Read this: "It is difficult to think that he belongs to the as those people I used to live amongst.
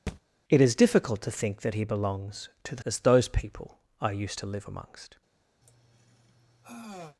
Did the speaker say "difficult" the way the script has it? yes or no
yes